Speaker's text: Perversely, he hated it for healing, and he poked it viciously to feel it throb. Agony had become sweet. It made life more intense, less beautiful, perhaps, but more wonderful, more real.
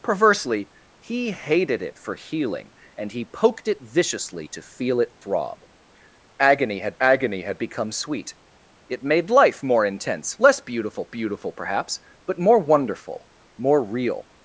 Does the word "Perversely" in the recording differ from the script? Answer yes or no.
no